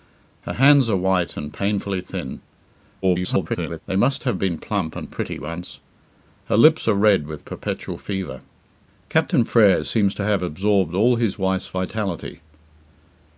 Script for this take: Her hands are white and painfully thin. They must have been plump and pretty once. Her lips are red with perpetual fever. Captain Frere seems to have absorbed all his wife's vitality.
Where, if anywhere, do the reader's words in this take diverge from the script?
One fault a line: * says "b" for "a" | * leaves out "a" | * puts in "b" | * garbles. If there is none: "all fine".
* garbles